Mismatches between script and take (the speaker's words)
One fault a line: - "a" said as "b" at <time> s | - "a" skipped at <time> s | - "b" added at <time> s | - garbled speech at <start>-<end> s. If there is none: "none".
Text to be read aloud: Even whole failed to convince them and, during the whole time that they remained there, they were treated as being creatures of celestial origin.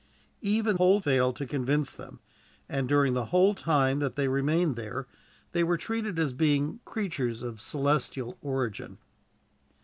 none